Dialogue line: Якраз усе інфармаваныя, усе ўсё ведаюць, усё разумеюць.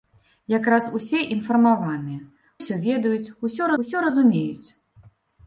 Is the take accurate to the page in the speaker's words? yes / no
no